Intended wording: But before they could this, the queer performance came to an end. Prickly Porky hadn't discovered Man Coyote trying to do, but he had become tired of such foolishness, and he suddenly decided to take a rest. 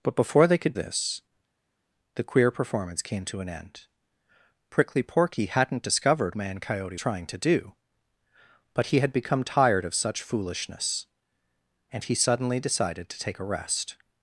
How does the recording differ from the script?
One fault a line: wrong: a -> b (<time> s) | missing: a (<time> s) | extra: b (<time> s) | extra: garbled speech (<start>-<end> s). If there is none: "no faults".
no faults